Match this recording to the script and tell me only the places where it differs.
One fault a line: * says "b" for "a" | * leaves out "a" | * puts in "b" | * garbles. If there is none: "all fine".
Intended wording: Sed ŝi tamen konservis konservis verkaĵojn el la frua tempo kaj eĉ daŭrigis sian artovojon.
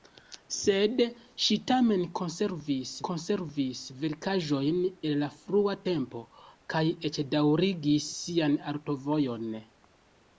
all fine